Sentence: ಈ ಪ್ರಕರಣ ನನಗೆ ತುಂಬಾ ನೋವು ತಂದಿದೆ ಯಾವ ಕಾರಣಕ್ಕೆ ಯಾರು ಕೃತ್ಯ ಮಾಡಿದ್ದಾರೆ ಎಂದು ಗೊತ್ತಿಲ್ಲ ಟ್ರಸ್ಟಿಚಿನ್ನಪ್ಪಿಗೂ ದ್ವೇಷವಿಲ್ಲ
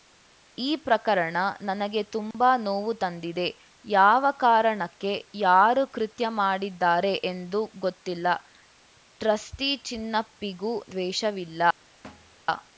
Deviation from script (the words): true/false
false